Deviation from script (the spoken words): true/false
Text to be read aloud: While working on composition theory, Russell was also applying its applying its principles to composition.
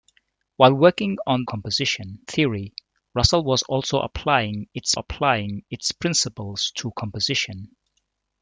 false